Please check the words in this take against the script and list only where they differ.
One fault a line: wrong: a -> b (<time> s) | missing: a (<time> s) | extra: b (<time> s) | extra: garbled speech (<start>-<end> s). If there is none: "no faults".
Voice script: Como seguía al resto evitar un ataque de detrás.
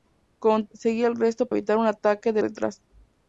no faults